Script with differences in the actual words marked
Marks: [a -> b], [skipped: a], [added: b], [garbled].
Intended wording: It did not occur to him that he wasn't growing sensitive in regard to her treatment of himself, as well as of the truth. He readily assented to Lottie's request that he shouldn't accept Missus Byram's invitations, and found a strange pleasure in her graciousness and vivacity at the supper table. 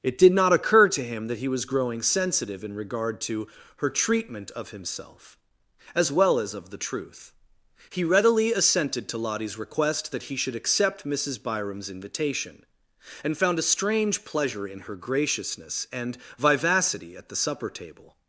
It did not occur to him that he [wasn't -> was] growing sensitive in regard to her treatment of himself, as well as of the truth. He readily assented to Lottie's request that he [shouldn't -> should] accept Missus Byram's [invitations, -> invitation] and found a strange pleasure in her graciousness and vivacity at the supper table.